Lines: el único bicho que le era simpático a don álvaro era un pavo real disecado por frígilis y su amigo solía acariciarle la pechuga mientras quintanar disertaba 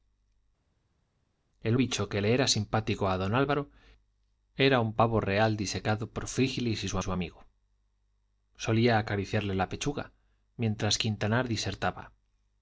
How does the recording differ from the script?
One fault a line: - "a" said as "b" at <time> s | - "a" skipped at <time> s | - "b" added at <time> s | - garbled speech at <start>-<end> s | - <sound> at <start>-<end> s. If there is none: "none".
- "único" skipped at 1.8 s
- "su" added at 7.0 s